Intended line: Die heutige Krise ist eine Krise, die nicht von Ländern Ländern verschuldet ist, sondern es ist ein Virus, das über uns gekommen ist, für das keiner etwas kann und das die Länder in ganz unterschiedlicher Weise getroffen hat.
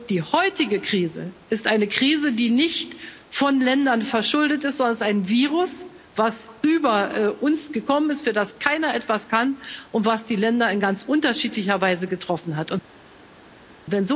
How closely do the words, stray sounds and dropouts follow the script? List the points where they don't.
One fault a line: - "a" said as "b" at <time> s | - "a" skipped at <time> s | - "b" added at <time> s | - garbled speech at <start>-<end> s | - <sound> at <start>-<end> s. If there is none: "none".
- "Ländern" skipped at 4.0 s